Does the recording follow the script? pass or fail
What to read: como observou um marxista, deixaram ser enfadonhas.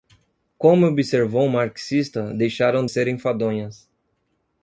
pass